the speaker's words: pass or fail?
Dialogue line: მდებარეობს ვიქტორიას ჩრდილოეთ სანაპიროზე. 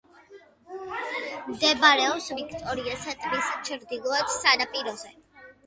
fail